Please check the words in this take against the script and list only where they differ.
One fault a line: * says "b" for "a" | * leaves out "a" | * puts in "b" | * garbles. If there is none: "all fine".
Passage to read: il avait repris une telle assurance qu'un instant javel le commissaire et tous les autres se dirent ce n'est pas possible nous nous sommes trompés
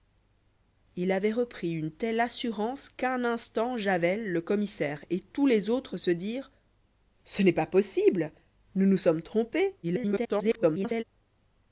* garbles